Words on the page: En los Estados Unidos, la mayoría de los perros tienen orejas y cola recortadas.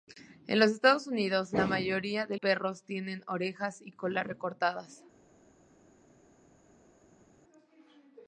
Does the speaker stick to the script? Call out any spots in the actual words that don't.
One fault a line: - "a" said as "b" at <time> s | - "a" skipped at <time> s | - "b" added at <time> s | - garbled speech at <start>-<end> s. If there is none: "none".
- "los" skipped at 2.4 s